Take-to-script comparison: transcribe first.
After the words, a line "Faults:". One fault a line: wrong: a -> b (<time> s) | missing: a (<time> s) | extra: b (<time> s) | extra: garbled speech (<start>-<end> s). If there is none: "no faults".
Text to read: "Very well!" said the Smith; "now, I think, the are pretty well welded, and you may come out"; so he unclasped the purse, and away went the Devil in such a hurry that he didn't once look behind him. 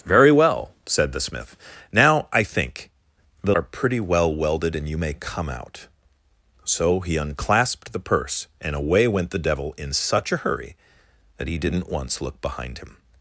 "Very well!" said the Smith; "now, I think, the are pretty well welded, and you may come out"; so he unclasped the purse, and away went the Devil in such a hurry that he didn't once look behind him.
Faults:
no faults